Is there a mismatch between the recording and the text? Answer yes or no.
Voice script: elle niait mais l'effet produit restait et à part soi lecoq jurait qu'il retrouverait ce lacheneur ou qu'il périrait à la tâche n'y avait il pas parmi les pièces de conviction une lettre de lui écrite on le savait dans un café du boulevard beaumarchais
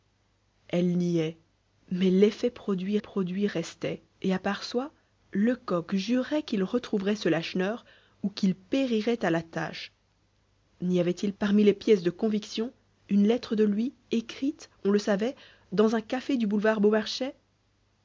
yes